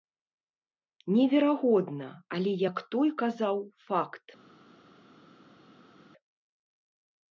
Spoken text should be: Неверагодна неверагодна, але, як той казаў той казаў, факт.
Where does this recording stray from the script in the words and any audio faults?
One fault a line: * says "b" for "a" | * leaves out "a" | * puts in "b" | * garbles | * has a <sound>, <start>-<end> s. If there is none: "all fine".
* leaves out "неверагодна"
* leaves out "той казаў"